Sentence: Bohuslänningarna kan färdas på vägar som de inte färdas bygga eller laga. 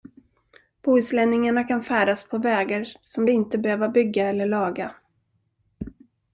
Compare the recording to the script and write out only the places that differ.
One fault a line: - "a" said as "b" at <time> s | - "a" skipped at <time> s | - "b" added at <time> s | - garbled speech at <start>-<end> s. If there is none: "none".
- "färdas" said as "behöva" at 3.6 s